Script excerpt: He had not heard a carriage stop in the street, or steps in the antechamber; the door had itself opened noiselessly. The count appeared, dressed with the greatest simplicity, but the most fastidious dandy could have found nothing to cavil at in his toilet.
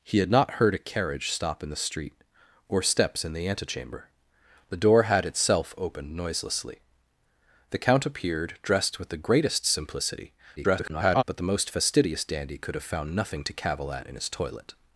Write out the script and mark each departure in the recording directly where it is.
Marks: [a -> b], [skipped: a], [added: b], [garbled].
He had not heard a carriage stop in the street, or steps in the antechamber; the door had itself opened noiselessly. The count appeared, dressed with the greatest simplicity, [garbled] but the most fastidious dandy could have found nothing to cavil at in his toilet.